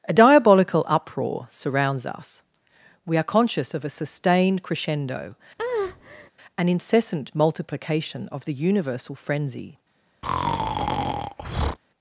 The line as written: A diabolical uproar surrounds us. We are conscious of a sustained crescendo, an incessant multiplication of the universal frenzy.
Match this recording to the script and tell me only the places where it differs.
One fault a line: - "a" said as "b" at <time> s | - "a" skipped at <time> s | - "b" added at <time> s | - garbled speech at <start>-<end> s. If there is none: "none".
none